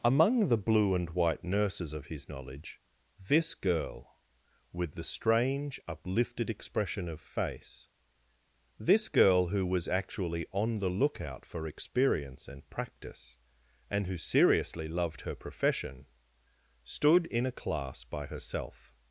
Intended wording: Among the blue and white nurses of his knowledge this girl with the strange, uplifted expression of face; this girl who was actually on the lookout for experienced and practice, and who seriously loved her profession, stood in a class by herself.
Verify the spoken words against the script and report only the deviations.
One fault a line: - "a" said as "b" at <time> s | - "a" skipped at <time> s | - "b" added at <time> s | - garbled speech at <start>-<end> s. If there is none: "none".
- "experienced" said as "experience" at 11.7 s